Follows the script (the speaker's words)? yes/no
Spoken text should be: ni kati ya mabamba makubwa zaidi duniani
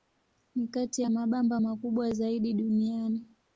yes